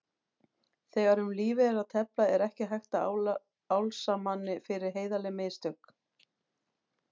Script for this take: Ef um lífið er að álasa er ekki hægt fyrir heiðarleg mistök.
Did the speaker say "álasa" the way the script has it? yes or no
no